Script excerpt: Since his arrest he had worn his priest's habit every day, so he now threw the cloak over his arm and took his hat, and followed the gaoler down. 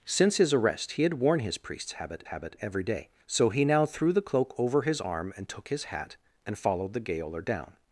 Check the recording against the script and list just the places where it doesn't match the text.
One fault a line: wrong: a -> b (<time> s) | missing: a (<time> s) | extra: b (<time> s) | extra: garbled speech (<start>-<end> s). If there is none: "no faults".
extra: habit (2.2 s)